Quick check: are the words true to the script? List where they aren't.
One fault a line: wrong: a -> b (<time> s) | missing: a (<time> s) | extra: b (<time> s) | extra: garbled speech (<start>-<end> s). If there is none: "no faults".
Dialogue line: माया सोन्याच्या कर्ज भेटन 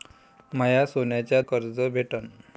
no faults